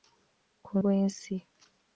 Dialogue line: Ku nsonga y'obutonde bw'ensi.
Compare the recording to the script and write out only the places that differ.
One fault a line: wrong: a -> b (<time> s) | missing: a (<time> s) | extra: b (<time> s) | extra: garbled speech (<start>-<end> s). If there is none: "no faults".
missing: nsonga y'obutonde (0.7 s)